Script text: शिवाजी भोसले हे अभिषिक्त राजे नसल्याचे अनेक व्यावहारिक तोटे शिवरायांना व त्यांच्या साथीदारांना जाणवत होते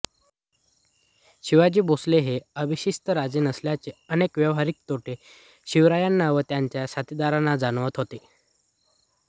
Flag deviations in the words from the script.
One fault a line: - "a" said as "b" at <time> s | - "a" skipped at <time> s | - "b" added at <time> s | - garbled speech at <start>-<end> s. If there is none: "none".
none